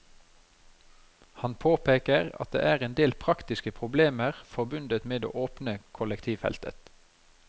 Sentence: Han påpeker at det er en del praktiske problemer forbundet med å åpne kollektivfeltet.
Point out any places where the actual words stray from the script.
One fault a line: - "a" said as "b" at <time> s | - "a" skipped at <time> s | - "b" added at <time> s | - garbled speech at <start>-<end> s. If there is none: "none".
none